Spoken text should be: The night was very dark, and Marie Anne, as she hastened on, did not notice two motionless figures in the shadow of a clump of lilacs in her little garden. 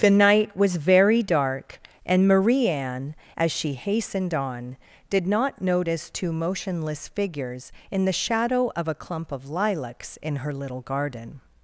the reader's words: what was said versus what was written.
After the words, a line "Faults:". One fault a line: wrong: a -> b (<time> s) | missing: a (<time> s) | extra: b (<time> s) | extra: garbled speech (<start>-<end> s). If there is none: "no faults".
The night was very dark, and Marie Anne, as she hastened on, did not notice two motionless figures in the shadow of a clump of lilacs in her little garden.
Faults:
no faults